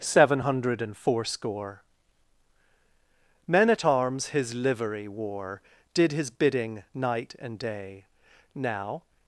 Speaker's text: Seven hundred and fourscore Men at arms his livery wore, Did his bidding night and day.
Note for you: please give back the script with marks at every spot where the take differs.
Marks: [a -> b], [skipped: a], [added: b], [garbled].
Seven hundred and fourscore Men at arms his livery wore, Did his bidding night and day. [added: Now]